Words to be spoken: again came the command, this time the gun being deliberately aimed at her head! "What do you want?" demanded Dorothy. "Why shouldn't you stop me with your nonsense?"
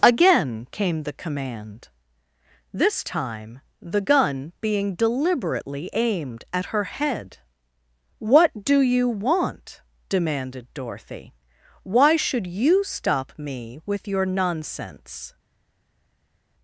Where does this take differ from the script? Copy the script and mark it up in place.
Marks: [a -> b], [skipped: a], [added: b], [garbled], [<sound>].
again came the command, this time the gun being deliberately aimed at her head! "What do you want?" demanded Dorothy. "Why [shouldn't -> should] you stop me with your nonsense?"